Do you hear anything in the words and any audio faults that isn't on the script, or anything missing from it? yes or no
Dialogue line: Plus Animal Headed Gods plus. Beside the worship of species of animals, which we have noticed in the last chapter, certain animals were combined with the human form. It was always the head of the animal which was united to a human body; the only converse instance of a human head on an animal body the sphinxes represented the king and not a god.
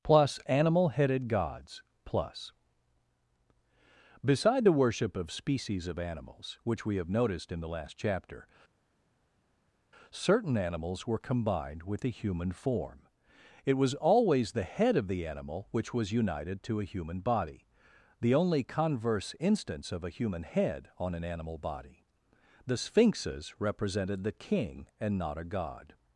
no